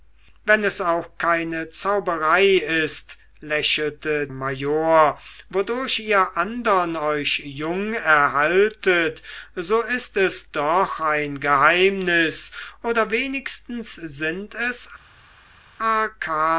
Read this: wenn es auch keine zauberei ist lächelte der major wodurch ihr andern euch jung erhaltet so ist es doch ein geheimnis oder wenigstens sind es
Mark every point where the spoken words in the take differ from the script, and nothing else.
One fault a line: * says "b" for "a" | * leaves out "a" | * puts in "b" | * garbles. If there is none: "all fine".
* leaves out "der"